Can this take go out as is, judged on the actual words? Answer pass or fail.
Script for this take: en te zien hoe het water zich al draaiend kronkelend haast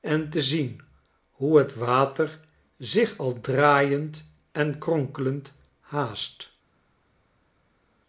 fail